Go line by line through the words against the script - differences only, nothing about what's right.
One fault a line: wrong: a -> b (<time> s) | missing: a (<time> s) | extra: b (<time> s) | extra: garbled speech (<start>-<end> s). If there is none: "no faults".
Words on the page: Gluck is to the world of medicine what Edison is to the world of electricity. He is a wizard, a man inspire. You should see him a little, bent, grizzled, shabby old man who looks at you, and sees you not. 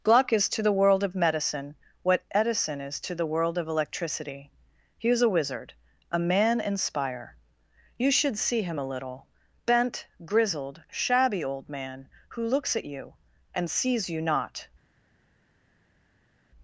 no faults